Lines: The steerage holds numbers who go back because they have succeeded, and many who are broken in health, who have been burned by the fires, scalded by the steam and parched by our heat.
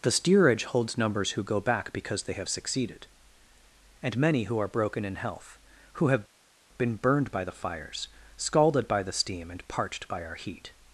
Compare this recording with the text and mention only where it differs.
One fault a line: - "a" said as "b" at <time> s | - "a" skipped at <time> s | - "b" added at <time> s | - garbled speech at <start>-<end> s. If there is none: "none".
none